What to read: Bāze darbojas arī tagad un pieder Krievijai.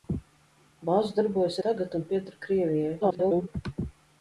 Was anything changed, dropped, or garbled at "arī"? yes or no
yes